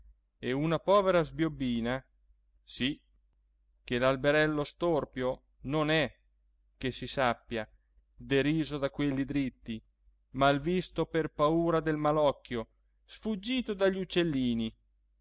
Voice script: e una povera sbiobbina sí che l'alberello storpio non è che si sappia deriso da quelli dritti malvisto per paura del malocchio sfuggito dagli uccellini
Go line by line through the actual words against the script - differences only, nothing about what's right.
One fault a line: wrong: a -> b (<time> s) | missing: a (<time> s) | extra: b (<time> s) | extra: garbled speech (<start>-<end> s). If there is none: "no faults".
no faults